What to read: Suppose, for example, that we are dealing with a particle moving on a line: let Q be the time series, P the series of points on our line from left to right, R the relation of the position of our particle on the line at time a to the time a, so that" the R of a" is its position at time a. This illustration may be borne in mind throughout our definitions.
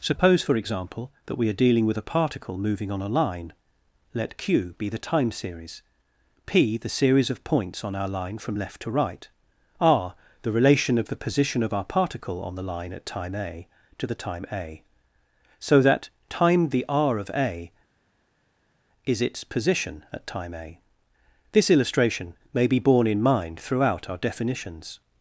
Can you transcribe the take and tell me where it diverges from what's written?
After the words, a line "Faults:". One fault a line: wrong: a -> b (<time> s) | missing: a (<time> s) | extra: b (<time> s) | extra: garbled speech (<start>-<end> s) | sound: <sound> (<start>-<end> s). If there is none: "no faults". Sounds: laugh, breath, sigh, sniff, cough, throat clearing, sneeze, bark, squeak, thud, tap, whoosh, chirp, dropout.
Suppose, for example, that we are dealing with a particle moving on a line: let Q be the time series, P the series of points on our line from left to right, R the relation of the position of our particle on the line at time a to the time a, so that" time the R of a" is its position at time a. This illustration may be borne in mind throughout our definitions.
Faults:
extra: time (16.3 s)